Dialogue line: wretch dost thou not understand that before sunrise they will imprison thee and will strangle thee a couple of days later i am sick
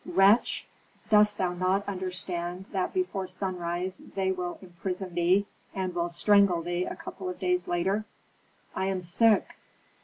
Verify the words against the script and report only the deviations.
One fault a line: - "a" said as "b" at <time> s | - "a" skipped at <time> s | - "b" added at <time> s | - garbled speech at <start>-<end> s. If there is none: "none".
none